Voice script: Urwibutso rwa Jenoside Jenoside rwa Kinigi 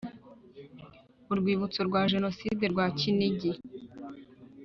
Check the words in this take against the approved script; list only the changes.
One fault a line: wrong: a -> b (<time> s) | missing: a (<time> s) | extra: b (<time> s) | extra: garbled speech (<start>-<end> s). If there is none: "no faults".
missing: Jenoside (2.6 s)